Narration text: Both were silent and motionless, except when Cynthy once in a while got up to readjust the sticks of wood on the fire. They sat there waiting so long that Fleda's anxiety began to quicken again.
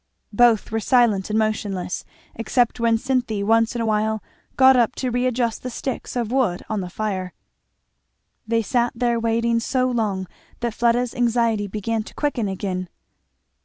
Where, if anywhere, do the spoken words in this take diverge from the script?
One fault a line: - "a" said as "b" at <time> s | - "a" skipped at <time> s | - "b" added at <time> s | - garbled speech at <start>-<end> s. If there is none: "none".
none